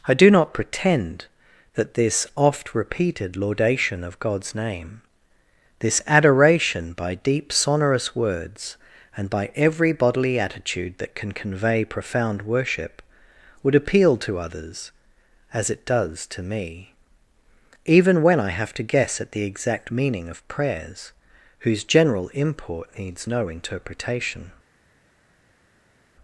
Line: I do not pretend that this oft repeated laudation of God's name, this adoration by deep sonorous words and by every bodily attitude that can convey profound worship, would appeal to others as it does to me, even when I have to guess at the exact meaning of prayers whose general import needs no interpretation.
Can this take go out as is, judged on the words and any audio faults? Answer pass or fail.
pass